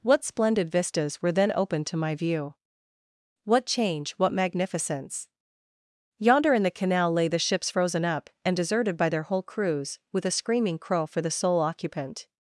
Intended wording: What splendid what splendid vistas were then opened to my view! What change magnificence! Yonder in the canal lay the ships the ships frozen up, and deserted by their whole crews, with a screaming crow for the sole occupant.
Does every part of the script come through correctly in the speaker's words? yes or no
no